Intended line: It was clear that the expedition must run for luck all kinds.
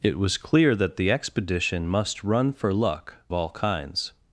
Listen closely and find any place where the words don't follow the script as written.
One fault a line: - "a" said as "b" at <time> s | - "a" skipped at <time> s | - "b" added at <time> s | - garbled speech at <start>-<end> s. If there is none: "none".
none